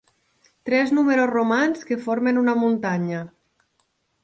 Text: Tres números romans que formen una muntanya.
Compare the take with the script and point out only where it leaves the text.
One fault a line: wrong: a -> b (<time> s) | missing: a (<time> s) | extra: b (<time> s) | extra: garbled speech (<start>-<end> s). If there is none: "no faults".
no faults